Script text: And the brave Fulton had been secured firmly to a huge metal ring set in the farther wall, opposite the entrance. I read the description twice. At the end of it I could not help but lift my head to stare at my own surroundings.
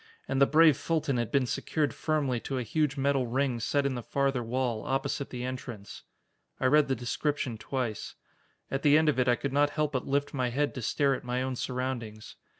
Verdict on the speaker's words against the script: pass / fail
pass